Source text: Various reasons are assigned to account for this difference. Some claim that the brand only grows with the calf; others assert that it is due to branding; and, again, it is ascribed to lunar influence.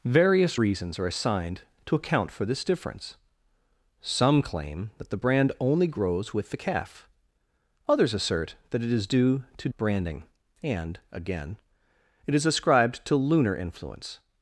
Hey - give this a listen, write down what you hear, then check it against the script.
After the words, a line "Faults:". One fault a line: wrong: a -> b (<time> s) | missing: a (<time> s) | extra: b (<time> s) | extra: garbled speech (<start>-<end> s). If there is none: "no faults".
Various reasons are assigned to account for this difference. Some claim that the brand only grows with the calf; others assert that it is due to branding; and, again, it is ascribed to lunar influence.
Faults:
no faults